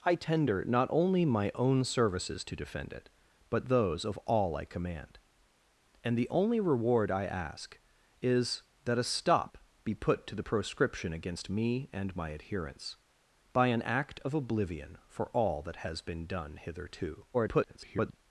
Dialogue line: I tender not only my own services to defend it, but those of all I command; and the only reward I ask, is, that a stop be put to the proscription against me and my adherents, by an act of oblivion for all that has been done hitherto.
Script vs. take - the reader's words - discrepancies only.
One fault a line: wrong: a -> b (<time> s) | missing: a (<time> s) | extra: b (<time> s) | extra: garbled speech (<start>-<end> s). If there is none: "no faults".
extra: garbled speech (17.3-18.2 s)